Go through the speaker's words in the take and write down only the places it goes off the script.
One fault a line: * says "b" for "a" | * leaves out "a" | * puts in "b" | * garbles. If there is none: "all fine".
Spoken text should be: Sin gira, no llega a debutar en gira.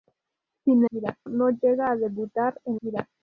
all fine